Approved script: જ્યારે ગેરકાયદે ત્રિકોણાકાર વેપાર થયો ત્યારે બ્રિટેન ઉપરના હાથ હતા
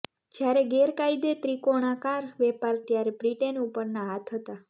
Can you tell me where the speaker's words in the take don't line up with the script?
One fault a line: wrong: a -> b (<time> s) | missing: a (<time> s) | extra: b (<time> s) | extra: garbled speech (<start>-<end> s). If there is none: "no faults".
missing: થયો (2.8 s)